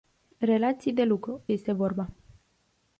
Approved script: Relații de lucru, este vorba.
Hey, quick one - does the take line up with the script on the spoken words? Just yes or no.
yes